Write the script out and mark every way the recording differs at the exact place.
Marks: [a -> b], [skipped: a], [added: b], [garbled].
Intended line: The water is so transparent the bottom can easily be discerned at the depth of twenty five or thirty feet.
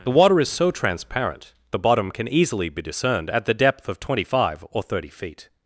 The water is so transparent the bottom can easily be discerned at the depth of twenty five or thirty feet.